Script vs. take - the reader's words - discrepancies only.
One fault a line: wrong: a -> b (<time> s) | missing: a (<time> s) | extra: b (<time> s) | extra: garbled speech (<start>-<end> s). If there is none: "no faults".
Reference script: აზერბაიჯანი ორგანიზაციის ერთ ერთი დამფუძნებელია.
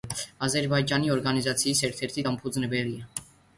no faults